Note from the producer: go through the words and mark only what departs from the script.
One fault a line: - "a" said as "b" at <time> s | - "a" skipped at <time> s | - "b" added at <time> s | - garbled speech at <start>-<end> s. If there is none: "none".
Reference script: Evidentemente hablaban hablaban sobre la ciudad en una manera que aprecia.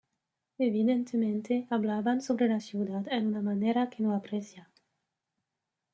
- "hablaban" skipped at 2.2 s
- "no" added at 4.0 s